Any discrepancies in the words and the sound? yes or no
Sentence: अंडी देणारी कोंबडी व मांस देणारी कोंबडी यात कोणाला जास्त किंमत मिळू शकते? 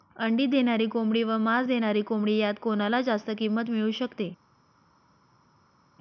no